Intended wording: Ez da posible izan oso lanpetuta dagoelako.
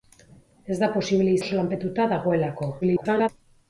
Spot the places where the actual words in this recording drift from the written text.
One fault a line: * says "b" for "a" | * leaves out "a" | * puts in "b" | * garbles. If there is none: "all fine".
* leaves out "izan"
* garbles